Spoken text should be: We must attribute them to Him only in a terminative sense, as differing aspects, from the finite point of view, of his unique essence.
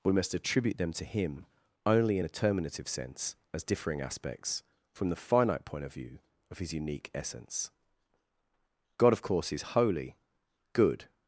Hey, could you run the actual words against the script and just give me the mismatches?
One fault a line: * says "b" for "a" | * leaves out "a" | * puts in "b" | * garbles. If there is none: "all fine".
* puts in "God of course is holy good"